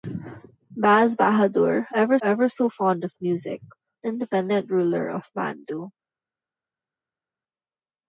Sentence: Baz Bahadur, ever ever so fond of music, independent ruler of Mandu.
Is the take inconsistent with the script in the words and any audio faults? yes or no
no